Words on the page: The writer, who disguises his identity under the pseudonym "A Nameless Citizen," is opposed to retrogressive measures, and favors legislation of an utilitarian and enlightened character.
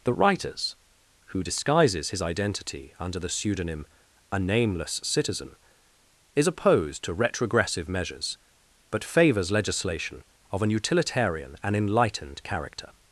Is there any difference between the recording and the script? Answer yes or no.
yes